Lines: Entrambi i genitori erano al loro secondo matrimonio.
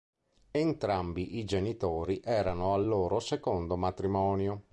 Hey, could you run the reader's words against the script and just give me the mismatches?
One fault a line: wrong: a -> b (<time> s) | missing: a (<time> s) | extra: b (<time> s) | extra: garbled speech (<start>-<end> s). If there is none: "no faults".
no faults